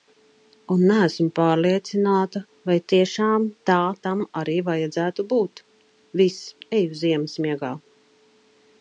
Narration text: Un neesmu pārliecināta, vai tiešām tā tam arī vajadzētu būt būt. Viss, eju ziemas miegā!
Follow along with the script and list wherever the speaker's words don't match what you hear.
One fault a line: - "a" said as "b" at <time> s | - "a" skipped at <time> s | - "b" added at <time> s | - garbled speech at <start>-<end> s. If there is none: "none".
- "būt" skipped at 5.6 s